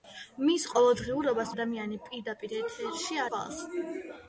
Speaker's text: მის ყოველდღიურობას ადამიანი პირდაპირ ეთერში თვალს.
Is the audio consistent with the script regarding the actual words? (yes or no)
yes